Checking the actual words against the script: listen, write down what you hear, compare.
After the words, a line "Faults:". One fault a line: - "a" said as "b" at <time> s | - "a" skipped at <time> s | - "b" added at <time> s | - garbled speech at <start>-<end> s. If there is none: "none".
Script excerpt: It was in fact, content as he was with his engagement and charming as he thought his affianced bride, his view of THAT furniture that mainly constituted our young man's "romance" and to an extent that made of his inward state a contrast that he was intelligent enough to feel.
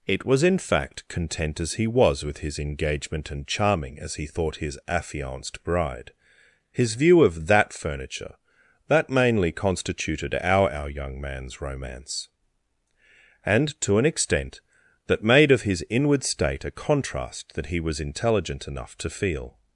It was in fact, content as he was with his engagement and charming as he thought his affianced bride, his view of THAT furniture that mainly constituted our our young man's "romance" and to an extent that made of his inward state a contrast that he was intelligent enough to feel.
Faults:
- "our" added at 10.7 s